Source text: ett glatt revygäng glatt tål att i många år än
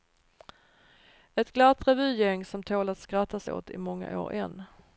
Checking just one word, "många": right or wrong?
right